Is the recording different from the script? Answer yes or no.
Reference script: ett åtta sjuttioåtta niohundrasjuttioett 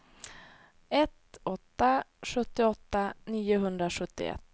no